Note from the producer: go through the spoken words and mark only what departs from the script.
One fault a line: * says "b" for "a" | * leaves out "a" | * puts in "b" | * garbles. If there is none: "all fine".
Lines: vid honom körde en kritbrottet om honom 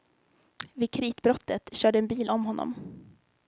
* says "kritbrottet" for "honom"
* says "bil" for "kritbrottet"